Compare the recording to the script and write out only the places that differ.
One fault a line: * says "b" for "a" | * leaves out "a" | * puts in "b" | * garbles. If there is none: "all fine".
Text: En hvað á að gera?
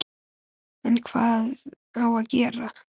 all fine